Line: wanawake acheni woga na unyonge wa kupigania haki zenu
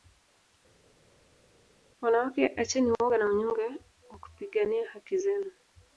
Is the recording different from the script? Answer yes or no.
no